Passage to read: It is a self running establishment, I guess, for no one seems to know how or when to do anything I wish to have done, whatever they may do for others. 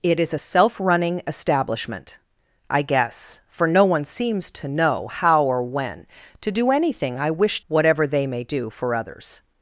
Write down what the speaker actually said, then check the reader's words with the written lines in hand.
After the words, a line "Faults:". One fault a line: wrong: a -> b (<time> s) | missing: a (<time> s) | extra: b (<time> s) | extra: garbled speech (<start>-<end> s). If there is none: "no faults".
It is a self running establishment, I guess, for no one seems to know how or when to do anything I wish whatever they may do for others.
Faults:
missing: to have done (7.6 s)